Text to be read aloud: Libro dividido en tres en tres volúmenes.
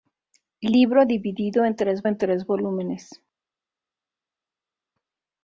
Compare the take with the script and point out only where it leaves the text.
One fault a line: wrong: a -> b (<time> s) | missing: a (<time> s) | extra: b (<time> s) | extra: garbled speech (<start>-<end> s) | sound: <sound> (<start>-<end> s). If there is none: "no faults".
no faults